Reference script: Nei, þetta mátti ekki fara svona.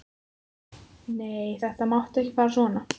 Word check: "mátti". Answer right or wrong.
right